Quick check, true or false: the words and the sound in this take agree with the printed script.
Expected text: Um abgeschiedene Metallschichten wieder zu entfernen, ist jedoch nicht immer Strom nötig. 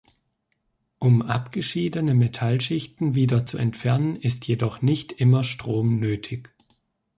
true